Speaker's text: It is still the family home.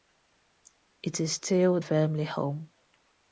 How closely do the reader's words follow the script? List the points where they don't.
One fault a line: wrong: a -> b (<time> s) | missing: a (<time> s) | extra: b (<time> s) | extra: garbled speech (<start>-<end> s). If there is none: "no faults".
missing: the (1.8 s)